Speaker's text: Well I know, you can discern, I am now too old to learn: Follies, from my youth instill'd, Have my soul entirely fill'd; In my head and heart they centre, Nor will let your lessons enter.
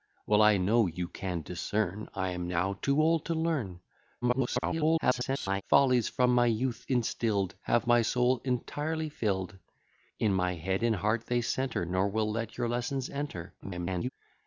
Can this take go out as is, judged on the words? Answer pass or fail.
fail